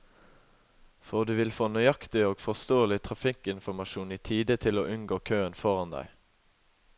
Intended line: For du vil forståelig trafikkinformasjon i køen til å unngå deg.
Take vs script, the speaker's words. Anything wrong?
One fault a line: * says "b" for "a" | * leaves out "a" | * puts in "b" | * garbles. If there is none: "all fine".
* puts in "få nøyaktig og"
* says "tide" for "køen"
* puts in "køen foran"